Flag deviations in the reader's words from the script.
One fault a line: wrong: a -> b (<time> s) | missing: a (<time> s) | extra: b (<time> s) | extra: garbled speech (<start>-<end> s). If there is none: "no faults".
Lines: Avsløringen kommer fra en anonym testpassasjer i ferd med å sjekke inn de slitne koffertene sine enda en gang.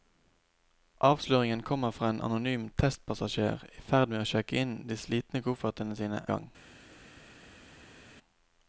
missing: enda en (6.2 s)